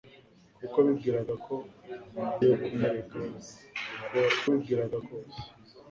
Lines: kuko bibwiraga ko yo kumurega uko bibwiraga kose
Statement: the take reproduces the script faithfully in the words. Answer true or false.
true